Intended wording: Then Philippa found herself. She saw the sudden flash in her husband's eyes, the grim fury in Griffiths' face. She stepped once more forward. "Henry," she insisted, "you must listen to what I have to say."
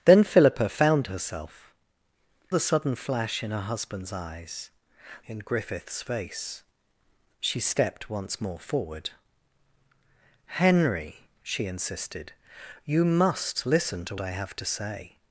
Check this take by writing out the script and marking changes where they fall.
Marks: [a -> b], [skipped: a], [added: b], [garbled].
Then Philippa found herself. [skipped: She saw] the sudden flash in her husband's eyes, [skipped: the grim fury] in Griffiths' face. She stepped once more forward. "Henry," she insisted, "you must listen to [skipped: what] I have to say."